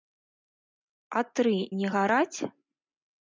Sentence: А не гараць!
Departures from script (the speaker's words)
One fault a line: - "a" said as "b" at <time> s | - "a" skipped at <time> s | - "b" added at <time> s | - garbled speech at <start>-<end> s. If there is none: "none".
- "тры" added at 1.4 s